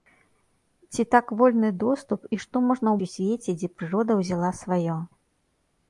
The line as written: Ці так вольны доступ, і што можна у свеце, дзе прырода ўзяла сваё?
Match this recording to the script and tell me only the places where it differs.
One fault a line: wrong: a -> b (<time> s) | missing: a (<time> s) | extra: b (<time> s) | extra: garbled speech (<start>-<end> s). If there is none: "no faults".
no faults